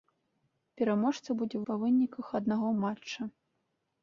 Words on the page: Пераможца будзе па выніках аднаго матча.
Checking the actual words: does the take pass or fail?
pass